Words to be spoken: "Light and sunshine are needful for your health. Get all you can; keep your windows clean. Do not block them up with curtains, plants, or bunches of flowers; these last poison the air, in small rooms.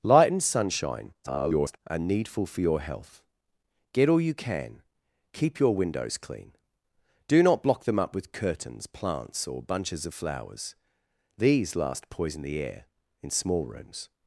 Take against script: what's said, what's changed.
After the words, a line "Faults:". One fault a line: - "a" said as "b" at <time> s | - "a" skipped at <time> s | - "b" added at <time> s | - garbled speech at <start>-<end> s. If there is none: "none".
"Light and sunshine [garbled] are needful for your health. Get all you can; keep your windows clean. Do not block them up with curtains, plants, or bunches of flowers; these last poison the air, in small rooms.
Faults:
- garbled speech at 1.2-1.8 s